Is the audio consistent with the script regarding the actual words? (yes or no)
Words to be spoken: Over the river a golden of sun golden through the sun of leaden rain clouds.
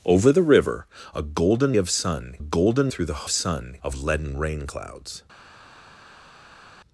yes